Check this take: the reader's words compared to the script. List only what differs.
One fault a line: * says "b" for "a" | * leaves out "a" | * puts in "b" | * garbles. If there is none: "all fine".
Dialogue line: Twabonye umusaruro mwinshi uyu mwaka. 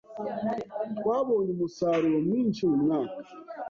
all fine